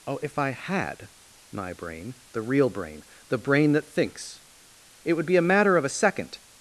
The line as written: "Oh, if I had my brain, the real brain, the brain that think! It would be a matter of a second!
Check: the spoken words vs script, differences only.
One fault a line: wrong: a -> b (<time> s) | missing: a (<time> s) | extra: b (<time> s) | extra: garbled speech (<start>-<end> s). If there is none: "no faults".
wrong: think -> thinks (3.8 s)